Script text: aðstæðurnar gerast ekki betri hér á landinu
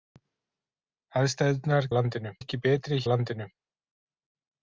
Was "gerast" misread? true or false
true